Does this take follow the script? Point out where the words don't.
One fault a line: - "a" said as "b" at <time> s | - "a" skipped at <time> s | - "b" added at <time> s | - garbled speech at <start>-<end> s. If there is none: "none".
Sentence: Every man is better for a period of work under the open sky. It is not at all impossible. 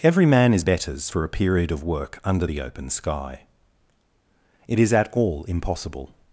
- "better" said as "betters" at 0.6 s
- "not" skipped at 4.9 s